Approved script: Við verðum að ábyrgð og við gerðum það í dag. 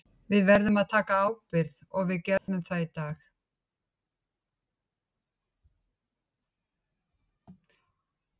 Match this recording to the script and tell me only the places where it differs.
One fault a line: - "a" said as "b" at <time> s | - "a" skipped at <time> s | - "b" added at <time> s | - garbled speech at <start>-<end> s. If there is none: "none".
- "taka" added at 0.9 s